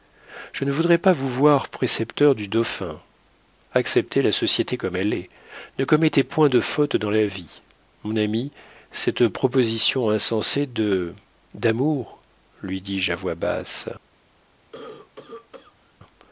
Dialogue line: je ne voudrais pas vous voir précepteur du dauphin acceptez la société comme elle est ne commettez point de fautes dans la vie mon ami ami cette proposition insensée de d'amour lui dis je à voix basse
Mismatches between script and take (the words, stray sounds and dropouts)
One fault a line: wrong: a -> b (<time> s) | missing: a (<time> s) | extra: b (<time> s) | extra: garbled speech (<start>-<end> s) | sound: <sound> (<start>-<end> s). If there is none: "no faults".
missing: ami (8.5 s)
sound: cough (14.7-15.9 s)